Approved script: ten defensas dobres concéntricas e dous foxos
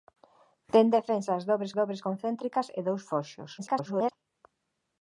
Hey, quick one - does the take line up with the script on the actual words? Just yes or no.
no